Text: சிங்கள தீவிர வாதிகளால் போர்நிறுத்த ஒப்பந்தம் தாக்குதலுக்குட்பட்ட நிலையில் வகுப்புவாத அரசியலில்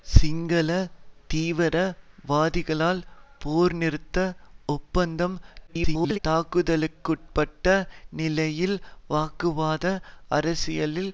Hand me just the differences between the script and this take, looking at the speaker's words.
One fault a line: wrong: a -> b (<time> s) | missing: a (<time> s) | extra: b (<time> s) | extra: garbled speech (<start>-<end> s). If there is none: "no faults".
extra: garbled speech (5.7-6.2 s)